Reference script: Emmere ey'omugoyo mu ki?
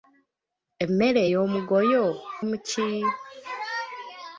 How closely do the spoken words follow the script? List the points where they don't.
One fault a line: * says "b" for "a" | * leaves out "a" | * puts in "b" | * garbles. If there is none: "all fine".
all fine